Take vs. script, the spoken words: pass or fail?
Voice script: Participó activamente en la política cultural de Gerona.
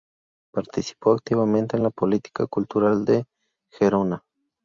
pass